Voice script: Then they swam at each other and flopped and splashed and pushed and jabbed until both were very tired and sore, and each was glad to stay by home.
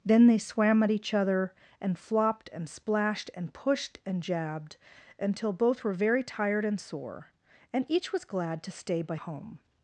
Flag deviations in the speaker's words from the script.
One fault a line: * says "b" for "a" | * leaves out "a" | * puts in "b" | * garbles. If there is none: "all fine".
all fine